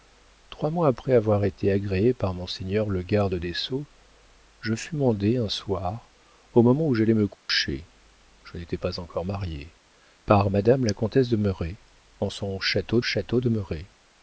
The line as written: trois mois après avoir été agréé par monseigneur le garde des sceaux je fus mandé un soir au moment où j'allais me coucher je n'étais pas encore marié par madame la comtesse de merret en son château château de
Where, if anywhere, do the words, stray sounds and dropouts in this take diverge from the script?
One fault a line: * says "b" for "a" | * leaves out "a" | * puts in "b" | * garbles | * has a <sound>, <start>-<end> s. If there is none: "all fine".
* has a dropout, 7.3-7.5 s